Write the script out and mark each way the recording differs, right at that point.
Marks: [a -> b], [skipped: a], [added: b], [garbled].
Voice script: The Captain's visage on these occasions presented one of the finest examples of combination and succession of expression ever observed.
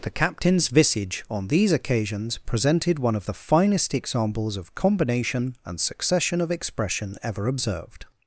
The Captain's visage on these occasions presented one of the finest examples of combination and succession of expression ever observed.